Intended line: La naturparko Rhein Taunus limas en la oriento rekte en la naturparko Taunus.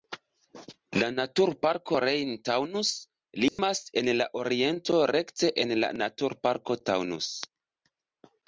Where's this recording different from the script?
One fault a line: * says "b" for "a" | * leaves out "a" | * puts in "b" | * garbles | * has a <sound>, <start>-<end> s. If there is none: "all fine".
* has a dropout, 3.5-3.6 s